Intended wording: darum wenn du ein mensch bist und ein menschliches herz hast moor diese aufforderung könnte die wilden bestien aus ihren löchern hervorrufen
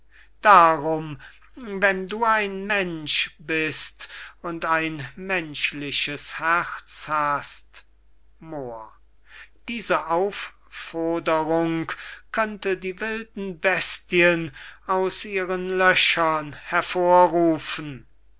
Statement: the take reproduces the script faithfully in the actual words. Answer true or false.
true